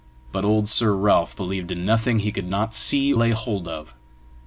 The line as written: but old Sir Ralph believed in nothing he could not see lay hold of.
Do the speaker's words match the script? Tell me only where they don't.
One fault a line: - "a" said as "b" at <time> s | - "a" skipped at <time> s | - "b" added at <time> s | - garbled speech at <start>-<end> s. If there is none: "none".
none